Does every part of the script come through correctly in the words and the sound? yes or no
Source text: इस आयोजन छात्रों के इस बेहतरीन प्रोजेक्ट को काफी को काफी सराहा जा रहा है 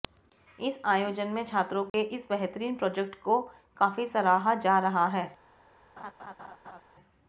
no